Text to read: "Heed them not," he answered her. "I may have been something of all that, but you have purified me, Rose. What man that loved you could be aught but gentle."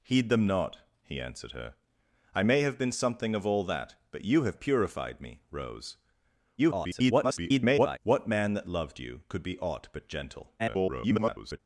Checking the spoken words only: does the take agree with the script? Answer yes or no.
no